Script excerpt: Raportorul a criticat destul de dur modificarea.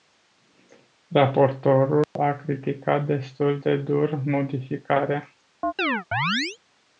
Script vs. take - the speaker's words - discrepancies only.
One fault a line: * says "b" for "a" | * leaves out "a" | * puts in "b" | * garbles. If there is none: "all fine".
all fine